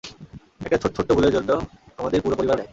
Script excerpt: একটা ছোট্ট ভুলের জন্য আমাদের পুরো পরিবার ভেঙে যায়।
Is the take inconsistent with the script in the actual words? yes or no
yes